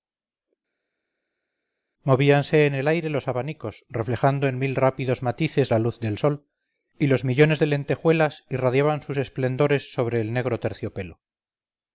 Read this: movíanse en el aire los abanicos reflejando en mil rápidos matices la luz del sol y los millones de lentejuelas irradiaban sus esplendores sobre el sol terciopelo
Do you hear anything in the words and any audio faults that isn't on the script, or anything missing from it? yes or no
yes